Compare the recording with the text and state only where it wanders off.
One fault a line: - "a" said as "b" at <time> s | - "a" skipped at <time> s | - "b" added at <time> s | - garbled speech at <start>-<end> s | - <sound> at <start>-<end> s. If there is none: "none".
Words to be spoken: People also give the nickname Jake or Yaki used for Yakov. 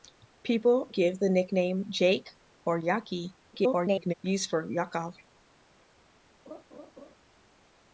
- "also" skipped at 0.9 s
- garbled speech at 3.5-4.1 s
- laugh at 6.5-7.1 s